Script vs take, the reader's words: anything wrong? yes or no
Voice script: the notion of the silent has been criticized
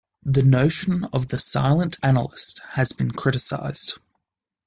yes